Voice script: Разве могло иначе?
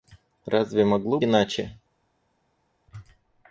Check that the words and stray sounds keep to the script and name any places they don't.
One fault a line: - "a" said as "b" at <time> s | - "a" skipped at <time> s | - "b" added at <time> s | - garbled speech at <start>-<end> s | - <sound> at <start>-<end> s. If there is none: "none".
none